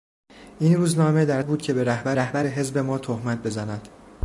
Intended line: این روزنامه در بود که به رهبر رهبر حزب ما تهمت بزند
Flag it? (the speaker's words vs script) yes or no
no